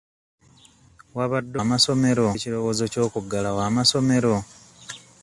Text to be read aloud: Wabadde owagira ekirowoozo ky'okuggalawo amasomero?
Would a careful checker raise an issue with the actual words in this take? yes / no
yes